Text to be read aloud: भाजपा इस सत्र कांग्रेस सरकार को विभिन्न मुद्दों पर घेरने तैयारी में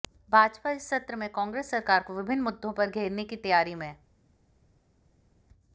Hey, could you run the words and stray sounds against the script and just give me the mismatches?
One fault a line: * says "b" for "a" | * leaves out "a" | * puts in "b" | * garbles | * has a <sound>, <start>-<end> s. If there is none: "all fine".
* puts in "में"
* puts in "की"